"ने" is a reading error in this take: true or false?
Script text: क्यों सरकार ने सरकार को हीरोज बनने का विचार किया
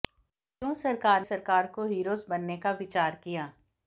true